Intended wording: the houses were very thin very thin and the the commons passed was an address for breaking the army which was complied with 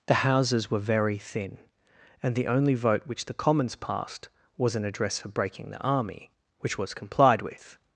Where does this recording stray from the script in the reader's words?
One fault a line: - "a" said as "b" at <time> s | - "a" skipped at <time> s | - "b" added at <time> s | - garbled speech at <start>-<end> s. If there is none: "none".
- "very thin and the" said as "and the only vote which" at 2.2 s